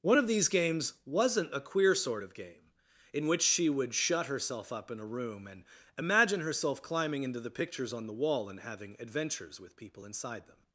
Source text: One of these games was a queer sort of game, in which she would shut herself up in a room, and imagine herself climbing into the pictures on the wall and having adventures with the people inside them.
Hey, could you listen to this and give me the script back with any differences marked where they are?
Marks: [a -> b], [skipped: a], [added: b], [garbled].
One of these games [was -> wasn't] a queer sort of game, in which she would shut herself up in a room, and imagine herself climbing into the pictures on the wall and having adventures with [skipped: the] people inside them.